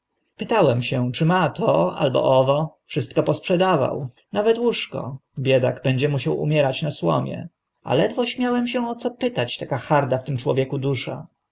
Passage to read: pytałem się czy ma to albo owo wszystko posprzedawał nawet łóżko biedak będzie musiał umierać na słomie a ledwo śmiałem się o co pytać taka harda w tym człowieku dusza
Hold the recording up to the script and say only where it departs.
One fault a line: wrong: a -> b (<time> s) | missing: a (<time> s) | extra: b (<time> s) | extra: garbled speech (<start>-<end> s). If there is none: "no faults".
no faults